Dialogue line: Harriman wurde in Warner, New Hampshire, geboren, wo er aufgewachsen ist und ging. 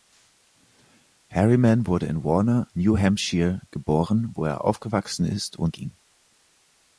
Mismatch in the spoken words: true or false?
false